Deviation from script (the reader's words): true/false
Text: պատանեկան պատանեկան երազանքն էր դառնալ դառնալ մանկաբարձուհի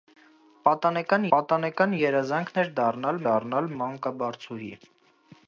false